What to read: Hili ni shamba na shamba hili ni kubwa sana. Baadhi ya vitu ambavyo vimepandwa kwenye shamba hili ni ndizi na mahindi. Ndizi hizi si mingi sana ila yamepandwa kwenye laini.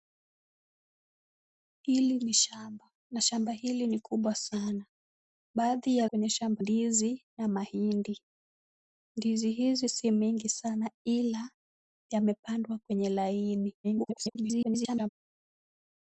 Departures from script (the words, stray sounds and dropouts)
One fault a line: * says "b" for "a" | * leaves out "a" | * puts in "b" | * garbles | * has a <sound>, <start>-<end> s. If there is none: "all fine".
* leaves out "vitu ambavyo vimepandwa"
* leaves out "hili ni"
* garbles